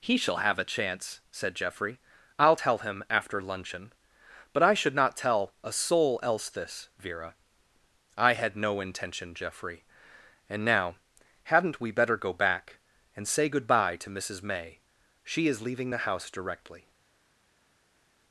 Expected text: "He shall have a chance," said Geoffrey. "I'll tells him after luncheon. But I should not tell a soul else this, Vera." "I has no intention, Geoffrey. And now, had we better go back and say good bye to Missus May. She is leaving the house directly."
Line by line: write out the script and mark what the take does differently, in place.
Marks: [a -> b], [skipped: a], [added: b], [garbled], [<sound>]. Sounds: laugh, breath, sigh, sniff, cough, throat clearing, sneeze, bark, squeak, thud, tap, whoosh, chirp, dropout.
"He shall have a chance," said Geoffrey. "I'll [tells -> tell] him after luncheon. But I should not tell a soul else this, Vera." "I [has -> had] no intention, Geoffrey. And now, [had -> hadn't] we better go back and say good bye to Missus May. She is leaving the house directly."